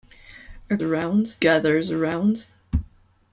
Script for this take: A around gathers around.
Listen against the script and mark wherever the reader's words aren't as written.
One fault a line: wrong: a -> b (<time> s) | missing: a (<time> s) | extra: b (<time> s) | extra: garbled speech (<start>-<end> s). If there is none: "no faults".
no faults